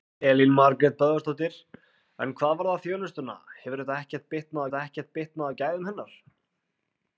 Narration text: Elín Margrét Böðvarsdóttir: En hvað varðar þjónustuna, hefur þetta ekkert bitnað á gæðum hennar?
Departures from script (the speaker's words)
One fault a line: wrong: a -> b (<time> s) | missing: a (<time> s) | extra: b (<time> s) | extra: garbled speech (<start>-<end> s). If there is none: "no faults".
extra: þetta ekkert bitnað (4.7 s)